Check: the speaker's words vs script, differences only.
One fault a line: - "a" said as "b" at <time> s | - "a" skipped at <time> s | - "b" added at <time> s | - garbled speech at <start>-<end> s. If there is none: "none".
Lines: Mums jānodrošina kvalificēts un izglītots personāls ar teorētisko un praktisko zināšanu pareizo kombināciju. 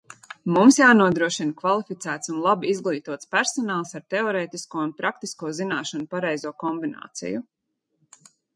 - "labi" added at 2.5 s